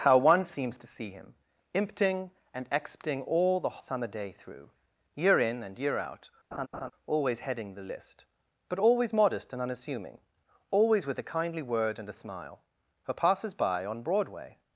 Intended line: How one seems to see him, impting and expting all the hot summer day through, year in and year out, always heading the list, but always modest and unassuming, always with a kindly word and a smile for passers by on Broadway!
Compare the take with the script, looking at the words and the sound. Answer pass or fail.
fail